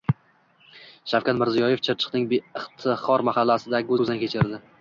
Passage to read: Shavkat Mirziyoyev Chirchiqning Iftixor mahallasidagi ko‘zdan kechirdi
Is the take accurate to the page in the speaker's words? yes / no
yes